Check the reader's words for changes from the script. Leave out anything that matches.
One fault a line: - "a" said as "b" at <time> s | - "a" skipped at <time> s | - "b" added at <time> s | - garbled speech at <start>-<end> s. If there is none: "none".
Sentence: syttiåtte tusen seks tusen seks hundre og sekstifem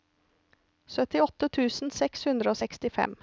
- "tusen seks" skipped at 2.2 s